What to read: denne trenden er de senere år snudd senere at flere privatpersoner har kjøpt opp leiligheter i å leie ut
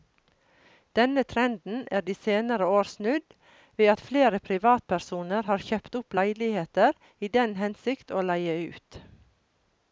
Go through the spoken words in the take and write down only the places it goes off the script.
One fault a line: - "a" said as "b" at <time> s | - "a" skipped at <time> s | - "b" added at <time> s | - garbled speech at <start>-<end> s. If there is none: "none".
- "senere" said as "ved" at 3.8 s
- "den hensikt" added at 7.4 s